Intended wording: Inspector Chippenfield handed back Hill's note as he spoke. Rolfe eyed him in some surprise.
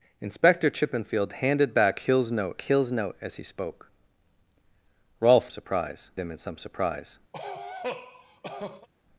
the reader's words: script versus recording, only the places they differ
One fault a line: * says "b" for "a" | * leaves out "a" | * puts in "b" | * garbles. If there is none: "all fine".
* puts in "Hill's note"
* says "surprise" for "eyed"